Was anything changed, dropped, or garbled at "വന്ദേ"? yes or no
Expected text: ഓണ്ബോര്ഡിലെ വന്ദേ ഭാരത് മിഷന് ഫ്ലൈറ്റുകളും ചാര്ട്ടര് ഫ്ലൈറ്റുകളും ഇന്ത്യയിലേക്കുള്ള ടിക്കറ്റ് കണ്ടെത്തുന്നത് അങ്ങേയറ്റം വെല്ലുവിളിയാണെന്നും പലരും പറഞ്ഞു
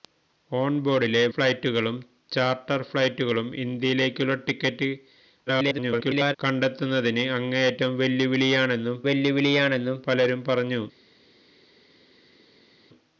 yes